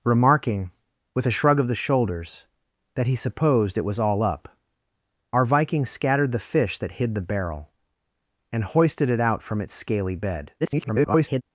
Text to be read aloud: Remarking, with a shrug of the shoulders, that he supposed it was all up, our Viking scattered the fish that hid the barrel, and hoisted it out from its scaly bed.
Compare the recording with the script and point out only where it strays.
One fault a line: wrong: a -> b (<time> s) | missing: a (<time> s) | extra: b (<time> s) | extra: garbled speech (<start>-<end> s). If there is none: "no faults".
extra: garbled speech (10.6-11.4 s)